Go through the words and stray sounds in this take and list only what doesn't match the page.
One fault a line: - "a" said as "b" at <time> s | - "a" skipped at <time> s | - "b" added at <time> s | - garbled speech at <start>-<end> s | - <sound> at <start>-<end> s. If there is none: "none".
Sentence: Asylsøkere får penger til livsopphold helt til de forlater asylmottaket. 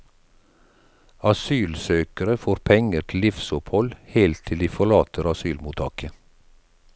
none